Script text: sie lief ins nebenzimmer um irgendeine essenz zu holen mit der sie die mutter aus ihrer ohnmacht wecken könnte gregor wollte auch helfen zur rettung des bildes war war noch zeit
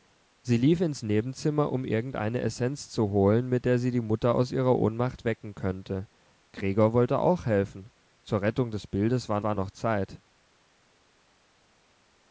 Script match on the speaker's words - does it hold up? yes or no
yes